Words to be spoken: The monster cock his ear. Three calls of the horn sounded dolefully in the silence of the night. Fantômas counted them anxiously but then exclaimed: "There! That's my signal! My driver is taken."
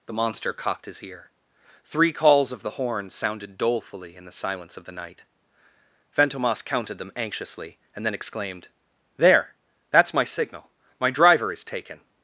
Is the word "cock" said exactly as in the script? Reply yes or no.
no